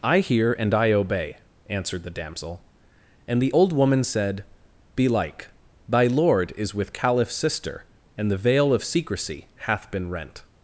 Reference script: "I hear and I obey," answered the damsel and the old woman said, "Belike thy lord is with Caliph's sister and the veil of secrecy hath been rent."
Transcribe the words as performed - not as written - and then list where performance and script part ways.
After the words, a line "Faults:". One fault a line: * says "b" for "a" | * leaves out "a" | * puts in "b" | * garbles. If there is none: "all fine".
"I hear and I obey," answered the damsel and the old woman said, "Belike thy lord is with Caliph's sister and the veil of secrecy hath been rent."
Faults:
all fine